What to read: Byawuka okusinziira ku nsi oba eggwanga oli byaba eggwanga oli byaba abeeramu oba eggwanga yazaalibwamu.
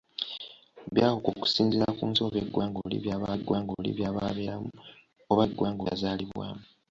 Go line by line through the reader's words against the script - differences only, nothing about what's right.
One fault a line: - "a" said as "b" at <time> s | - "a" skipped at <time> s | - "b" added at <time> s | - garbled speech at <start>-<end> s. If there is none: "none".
none